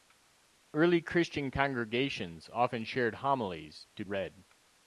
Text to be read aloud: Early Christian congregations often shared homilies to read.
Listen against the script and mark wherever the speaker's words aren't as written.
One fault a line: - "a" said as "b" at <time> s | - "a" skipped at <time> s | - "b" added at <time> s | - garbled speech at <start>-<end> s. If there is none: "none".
none